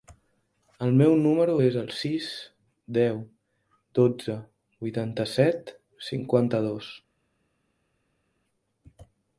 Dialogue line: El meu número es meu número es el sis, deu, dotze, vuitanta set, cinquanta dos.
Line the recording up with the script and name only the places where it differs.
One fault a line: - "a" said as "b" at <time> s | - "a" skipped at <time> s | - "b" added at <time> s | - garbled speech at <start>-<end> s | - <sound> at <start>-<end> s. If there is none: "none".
- "meu número es" skipped at 1.8 s